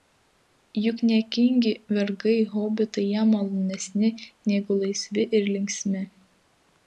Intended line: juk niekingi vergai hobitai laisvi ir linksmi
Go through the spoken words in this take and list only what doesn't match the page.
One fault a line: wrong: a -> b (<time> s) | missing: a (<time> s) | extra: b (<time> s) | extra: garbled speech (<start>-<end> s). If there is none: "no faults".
extra: jam malonesni negu (3.1 s)